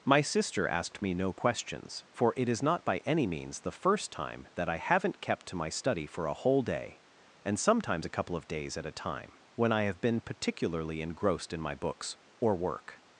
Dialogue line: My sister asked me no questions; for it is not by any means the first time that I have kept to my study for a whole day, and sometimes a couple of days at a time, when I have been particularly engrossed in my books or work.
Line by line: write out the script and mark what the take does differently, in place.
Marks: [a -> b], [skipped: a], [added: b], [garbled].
My sister asked me no questions; for it is not by any means the first time that I [have -> haven't] kept to my study for a whole day, and sometimes a couple of days at a time, when I have been particularly engrossed in my books or work.